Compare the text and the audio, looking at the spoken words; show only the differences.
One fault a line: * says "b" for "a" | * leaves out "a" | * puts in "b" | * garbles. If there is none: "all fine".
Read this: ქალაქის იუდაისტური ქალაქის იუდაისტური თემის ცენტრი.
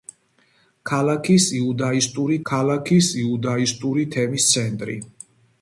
all fine